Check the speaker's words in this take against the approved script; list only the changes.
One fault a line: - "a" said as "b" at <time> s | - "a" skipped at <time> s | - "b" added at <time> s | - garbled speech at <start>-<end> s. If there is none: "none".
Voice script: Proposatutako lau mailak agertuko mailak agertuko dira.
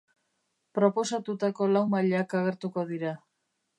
- "mailak agertuko" skipped at 2.9 s